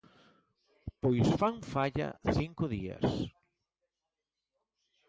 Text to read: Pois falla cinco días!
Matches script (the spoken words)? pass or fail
fail